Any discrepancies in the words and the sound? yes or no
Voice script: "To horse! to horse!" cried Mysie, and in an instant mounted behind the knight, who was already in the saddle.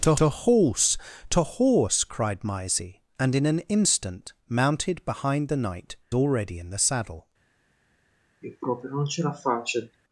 yes